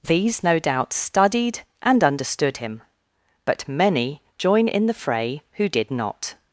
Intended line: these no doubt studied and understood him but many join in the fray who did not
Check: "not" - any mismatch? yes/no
no